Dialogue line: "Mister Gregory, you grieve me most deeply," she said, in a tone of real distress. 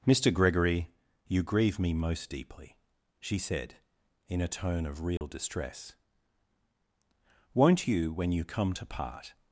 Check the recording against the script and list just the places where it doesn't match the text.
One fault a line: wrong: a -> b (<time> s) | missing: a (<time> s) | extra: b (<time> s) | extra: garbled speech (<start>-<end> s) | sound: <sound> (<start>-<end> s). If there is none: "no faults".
sound: dropout (5.2-5.2 s)
extra: Won't you when you come to part (7.5 s)